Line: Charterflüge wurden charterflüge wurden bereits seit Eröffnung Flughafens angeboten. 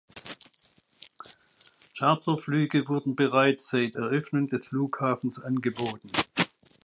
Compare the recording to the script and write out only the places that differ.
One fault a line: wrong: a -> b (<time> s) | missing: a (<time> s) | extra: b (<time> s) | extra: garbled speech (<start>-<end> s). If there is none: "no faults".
missing: charterflüge wurden (3.1 s)
extra: des (4.5 s)